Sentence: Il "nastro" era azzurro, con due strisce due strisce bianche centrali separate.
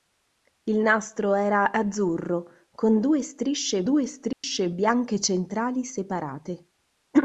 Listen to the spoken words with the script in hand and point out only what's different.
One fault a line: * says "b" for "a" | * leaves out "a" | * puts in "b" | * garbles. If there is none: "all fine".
all fine